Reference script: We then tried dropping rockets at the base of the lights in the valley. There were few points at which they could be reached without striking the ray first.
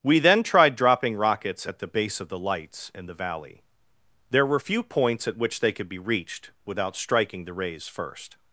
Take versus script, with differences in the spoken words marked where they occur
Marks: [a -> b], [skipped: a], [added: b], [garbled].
We then tried dropping rockets at the base of the lights in the valley. There were few points at which they could be reached without striking the [ray -> rays] first.